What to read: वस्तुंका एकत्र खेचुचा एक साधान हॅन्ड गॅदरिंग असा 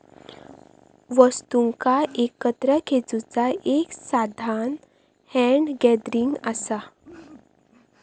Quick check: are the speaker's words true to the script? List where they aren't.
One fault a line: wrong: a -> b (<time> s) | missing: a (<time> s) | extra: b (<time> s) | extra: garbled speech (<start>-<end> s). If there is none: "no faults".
no faults